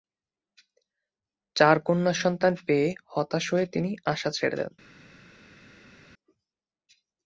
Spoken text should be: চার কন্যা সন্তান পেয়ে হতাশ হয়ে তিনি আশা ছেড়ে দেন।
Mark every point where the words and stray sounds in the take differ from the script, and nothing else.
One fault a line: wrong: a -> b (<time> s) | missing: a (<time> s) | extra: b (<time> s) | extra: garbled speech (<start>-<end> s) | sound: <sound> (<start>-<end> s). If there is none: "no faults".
no faults